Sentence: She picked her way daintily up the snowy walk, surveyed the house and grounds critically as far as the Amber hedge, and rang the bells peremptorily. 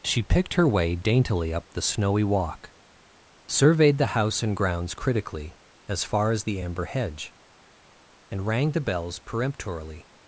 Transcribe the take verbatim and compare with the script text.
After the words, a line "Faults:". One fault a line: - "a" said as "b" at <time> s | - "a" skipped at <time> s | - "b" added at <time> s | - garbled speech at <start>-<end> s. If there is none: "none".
She picked her way daintily up the snowy walk, surveyed the house and grounds critically as far as the Amber hedge, and rang the bells peremptorily.
Faults:
none